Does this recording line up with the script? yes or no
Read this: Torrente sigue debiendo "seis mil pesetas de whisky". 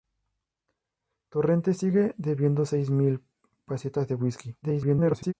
no